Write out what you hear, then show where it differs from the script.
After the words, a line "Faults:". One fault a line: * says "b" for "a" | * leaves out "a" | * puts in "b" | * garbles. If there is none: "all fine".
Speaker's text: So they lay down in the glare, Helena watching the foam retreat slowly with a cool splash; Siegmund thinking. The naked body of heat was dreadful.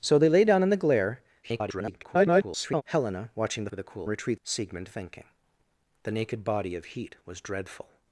So they lay down in the glare, [garbled] Helena watching the with a cool retreat; Siegmund thinking. The naked body of heat was dreadful.
Faults:
* garbles
* leaves out "foam retreat slowly"
* says "retreat" for "splash"